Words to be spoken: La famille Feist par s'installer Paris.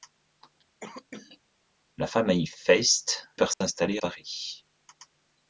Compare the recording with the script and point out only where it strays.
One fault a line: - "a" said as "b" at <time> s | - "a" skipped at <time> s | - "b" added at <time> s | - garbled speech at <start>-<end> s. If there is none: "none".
none